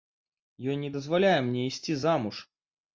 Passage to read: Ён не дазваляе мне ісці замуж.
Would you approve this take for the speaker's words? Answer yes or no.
yes